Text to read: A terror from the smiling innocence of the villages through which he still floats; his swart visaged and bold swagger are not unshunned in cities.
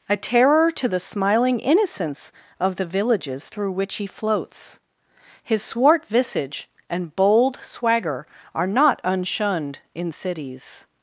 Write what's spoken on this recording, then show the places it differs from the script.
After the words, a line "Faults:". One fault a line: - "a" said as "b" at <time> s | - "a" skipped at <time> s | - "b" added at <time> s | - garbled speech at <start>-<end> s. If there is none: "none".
A terror to the smiling innocence of the villages through which he floats; his swart visage and bold swagger are not unshunned in cities.
Faults:
- "from" said as "to" at 0.7 s
- "still" skipped at 4.1 s
- "visaged" said as "visage" at 6.1 s